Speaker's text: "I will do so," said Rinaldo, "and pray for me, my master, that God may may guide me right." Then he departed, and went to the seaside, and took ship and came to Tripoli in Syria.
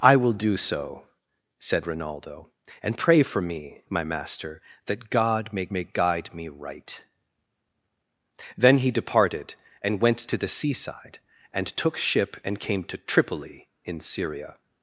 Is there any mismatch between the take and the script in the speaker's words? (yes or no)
no